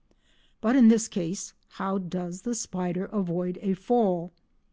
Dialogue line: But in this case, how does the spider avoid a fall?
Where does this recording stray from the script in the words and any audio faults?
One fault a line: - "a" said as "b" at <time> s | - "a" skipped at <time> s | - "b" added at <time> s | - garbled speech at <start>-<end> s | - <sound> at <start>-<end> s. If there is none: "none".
none